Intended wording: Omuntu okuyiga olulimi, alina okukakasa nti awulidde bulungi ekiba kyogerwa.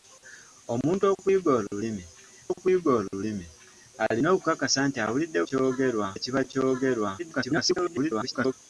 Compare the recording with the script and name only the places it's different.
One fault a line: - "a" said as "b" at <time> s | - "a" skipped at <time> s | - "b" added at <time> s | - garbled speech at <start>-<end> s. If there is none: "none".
- "okuyiga olulimi" added at 2.5 s
- "bulungi" said as "kyogerwa" at 5.5 s
- garbled speech at 7.2-8.5 s